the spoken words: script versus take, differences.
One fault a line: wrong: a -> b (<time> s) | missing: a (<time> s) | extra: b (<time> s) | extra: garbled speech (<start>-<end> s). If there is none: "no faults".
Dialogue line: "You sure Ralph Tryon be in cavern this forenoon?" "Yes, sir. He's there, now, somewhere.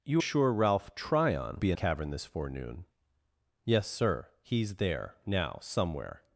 no faults